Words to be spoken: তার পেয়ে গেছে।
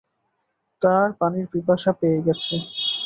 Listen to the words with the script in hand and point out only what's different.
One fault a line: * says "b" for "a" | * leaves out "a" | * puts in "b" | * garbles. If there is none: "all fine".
* puts in "পানির পিপাসা"